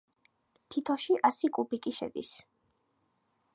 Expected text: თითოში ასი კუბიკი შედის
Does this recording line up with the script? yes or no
yes